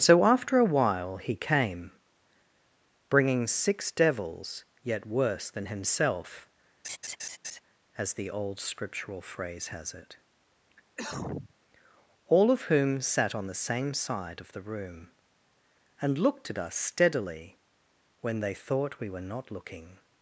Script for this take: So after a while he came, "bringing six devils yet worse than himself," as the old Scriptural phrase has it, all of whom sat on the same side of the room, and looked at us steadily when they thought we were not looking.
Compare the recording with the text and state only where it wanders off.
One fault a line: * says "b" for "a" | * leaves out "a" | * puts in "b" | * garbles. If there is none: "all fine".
all fine